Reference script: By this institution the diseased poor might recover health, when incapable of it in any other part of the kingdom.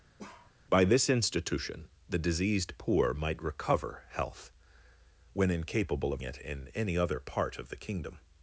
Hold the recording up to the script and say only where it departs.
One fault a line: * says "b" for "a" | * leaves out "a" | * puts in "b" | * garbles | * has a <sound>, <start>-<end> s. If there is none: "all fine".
* has a bark, 0.2-0.6 s